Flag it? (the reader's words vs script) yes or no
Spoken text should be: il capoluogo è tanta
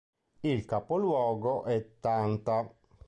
no